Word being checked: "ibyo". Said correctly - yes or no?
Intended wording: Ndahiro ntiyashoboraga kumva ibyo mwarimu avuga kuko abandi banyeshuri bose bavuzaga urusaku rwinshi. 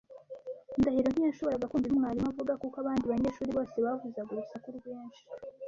no